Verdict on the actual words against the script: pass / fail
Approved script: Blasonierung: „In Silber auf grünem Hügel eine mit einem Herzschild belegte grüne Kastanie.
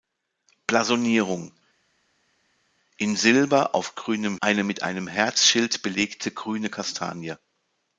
fail